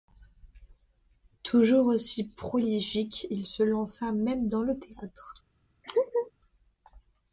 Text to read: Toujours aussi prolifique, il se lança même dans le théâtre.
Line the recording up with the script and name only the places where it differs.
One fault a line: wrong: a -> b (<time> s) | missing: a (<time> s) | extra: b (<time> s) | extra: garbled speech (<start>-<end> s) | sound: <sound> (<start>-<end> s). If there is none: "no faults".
sound: laugh (5.8-6.3 s)